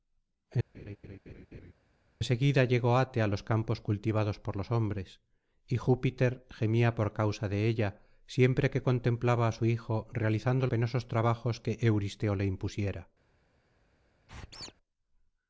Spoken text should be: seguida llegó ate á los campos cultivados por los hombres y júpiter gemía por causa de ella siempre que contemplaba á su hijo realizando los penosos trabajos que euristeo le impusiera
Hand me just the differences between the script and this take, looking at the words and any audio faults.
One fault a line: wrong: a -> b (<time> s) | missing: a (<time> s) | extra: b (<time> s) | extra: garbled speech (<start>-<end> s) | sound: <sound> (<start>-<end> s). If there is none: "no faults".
sound: laugh (0.7-1.7 s)
missing: los (10.7 s)
sound: squeak (14.3-14.7 s)